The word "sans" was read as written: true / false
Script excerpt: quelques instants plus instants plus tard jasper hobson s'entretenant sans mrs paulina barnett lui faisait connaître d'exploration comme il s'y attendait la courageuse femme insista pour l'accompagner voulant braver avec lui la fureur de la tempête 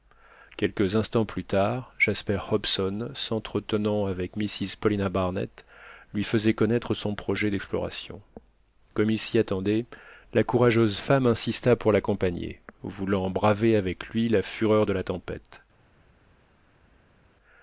false